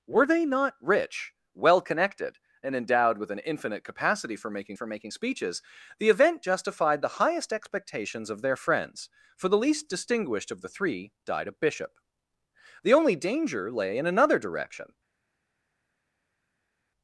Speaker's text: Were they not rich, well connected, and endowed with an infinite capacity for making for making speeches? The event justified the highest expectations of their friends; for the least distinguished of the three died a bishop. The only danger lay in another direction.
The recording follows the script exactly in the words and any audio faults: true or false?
true